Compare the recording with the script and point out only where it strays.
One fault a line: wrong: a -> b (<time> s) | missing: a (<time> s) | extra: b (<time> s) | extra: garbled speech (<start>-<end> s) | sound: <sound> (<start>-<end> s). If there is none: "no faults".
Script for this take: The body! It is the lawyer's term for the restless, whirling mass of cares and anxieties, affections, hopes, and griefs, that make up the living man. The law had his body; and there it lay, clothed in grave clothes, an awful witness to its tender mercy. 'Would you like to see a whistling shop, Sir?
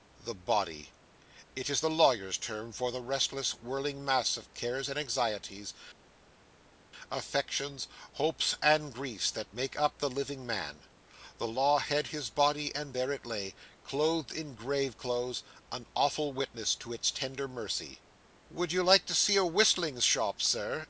no faults